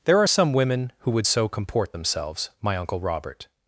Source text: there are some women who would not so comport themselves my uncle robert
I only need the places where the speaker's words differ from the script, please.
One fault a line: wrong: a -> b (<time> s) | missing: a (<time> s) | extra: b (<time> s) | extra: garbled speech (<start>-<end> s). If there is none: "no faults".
missing: not (1.3 s)